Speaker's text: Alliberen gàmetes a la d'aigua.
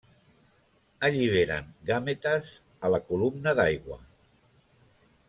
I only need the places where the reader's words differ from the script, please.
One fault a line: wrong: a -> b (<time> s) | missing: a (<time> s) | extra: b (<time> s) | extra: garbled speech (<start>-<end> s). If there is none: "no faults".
extra: columna (3.1 s)